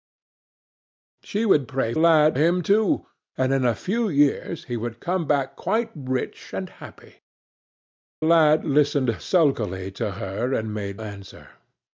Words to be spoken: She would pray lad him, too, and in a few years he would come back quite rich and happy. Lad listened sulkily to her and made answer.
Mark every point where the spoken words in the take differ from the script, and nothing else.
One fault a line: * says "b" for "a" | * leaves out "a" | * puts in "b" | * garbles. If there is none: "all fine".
all fine